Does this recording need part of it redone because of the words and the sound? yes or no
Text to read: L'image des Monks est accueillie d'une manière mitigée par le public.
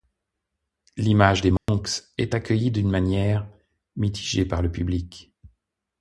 yes